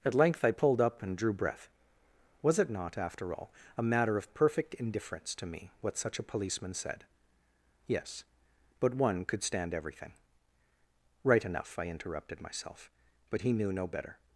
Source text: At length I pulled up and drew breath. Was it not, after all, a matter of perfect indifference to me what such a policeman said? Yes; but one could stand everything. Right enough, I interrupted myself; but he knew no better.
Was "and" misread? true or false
false